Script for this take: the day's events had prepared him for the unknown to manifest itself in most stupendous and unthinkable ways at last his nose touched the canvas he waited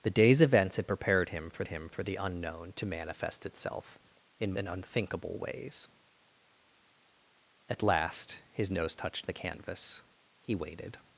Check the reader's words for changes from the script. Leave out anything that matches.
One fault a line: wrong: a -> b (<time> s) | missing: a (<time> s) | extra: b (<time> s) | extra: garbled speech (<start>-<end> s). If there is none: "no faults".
extra: him for (1.7 s)
missing: most stupendous (4.5 s)